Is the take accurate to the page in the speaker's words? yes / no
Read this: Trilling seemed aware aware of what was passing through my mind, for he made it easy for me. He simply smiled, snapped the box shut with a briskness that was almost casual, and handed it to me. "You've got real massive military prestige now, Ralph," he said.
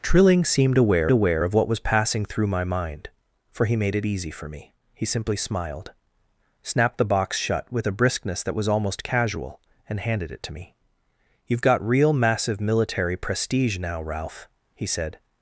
yes